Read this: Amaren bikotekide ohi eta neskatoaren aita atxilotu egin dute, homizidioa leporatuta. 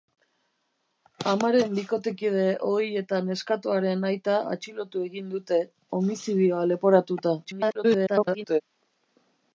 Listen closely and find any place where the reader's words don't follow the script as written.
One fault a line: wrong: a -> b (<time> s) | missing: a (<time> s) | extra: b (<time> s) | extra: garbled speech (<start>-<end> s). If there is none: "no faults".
extra: garbled speech (7.4-8.6 s)